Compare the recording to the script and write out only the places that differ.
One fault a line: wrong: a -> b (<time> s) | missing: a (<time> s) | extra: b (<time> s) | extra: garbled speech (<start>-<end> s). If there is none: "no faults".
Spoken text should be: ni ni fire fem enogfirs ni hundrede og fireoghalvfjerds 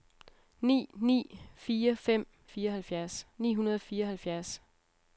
wrong: enogfirs -> fireoghalvfjerds (2.4 s)